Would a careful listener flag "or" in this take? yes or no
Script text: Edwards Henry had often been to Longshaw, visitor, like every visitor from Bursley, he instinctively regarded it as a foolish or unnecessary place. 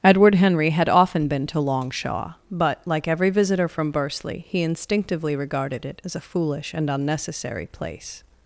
yes